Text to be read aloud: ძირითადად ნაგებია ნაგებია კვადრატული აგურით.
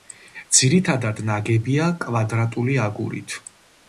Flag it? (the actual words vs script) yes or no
yes